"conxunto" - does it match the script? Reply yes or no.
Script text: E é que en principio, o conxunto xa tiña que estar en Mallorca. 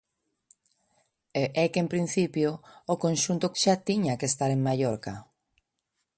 yes